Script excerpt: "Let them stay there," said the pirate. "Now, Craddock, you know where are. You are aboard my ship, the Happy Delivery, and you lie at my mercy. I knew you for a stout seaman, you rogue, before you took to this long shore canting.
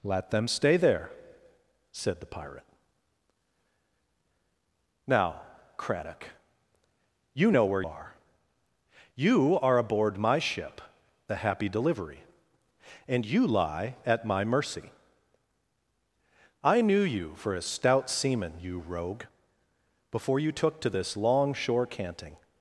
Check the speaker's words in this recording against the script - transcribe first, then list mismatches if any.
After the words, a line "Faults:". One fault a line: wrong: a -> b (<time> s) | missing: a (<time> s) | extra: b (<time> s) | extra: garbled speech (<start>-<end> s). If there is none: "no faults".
"Let them stay there," said the pirate. "Now, Craddock, you know where are. You are aboard my ship, the Happy Delivery, and you lie at my mercy. I knew you for a stout seaman, you rogue, before you took to this long shore canting.
Faults:
no faults